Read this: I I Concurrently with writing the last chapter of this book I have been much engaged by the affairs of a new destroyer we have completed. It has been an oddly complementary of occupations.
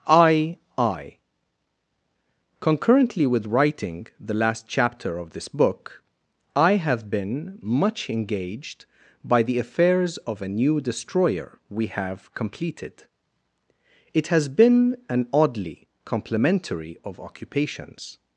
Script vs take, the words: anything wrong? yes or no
no